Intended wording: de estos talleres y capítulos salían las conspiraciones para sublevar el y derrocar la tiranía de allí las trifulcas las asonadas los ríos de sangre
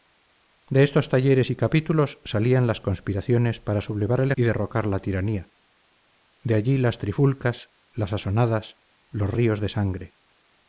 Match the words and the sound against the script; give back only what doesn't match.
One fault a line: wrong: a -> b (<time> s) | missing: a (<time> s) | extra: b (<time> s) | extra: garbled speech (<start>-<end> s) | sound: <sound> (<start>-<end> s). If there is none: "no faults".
no faults